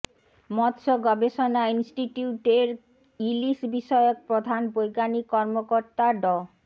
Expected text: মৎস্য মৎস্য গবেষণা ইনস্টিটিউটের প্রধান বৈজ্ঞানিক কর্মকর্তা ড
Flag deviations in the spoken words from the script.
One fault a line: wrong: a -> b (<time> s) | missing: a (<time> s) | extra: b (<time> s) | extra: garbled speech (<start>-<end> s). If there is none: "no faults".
missing: মৎস্য (0.9 s)
extra: ইলিশ বিষয়ক (3.2 s)